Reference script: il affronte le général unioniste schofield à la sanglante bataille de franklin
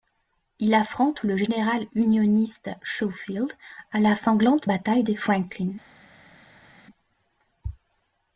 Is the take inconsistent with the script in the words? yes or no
no